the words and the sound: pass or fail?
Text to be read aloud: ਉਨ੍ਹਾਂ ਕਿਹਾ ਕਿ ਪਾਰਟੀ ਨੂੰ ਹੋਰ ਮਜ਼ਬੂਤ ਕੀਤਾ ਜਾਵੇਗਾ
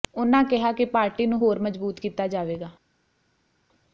pass